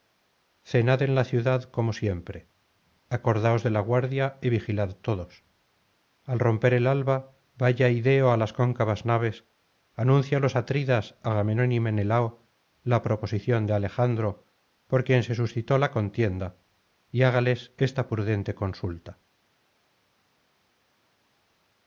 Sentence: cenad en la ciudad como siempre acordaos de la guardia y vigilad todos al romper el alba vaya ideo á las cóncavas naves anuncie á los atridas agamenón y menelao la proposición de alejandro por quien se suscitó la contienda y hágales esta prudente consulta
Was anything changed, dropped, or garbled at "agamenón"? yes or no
no